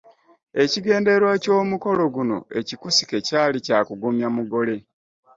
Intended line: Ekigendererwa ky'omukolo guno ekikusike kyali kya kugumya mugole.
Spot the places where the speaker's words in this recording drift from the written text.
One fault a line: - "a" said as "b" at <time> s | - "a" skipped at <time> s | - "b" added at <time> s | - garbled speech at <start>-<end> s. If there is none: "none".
none